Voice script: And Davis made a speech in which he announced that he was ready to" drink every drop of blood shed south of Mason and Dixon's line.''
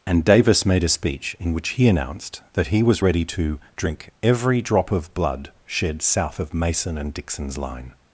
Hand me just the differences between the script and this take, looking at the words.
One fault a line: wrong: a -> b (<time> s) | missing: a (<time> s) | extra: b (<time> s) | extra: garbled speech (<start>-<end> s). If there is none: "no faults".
no faults